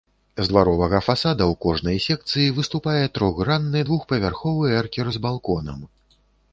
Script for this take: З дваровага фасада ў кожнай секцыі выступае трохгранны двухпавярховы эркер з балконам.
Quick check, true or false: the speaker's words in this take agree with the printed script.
true